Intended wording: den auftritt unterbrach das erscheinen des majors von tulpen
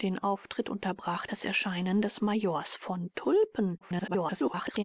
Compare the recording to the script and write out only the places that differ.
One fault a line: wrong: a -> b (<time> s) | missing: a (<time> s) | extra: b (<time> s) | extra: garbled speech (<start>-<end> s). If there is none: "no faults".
extra: garbled speech (3.8-4.8 s)